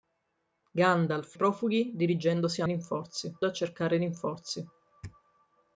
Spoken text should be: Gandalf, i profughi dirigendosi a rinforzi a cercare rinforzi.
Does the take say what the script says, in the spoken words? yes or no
yes